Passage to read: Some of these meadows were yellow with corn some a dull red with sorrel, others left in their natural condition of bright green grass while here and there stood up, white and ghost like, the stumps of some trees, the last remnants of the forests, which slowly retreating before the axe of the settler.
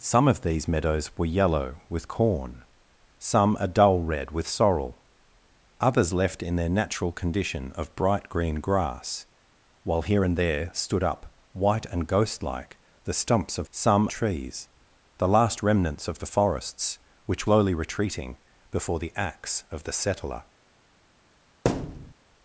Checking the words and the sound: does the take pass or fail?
fail